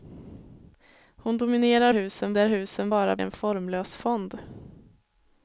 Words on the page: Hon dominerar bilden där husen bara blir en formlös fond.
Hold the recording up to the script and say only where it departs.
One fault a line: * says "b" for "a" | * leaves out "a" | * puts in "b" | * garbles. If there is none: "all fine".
* says "husen" for "bilden"
* leaves out "blir"